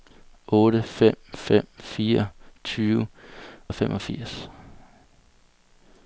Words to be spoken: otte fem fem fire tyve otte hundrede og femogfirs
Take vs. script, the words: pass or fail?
fail